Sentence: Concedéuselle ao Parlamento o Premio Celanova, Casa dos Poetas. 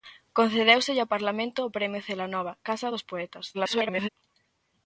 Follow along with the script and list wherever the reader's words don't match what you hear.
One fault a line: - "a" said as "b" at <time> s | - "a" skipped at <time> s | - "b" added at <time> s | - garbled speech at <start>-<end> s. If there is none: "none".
- garbled speech at 3.5-4.1 s